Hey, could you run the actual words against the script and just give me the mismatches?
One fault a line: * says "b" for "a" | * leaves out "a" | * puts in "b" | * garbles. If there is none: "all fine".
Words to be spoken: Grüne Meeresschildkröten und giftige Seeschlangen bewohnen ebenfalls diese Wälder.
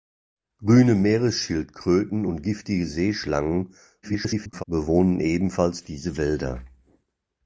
* garbles